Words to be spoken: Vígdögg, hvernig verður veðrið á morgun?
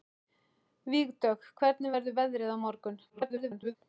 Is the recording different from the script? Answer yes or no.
yes